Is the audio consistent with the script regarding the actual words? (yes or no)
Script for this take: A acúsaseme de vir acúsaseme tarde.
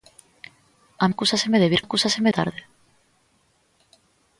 yes